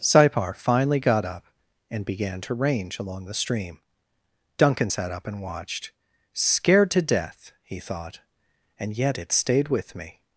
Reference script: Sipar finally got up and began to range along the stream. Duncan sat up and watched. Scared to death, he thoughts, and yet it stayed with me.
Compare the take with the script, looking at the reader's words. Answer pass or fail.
fail